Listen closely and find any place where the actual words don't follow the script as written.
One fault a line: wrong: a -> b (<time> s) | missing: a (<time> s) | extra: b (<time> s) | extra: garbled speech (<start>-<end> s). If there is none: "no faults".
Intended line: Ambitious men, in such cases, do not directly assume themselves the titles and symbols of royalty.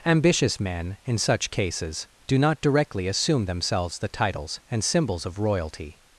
no faults